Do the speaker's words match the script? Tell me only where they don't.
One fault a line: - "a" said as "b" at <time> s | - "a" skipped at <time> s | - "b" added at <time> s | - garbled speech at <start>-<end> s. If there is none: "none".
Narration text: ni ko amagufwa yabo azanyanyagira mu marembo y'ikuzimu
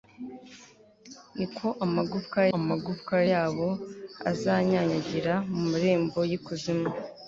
- "amagufwa" added at 2.6 s